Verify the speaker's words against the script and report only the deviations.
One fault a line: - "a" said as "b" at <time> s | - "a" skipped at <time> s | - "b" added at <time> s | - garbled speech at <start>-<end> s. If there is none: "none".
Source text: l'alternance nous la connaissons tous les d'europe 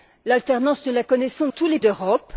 none